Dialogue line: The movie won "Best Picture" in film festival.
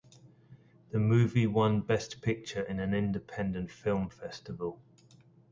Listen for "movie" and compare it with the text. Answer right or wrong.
right